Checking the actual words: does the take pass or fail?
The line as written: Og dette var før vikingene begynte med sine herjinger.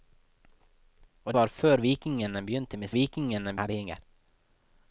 fail